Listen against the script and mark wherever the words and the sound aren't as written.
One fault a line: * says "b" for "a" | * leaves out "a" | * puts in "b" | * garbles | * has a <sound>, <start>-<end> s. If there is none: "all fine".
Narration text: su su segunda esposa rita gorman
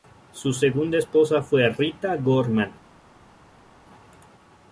* leaves out "su"
* puts in "fue"